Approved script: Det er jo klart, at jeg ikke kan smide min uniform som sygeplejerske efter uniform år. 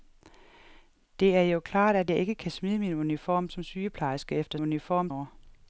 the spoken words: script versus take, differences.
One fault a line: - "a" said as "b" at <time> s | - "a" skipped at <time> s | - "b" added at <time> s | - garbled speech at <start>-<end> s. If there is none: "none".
none